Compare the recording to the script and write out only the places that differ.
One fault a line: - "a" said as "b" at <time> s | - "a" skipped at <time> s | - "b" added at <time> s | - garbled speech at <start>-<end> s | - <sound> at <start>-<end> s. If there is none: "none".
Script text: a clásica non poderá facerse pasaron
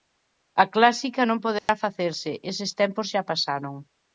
- dropout at 1.6-1.7 s
- "eses tempos xa" added at 2.5 s